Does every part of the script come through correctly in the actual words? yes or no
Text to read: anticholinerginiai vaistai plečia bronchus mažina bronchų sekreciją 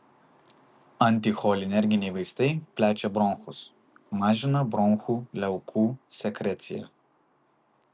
no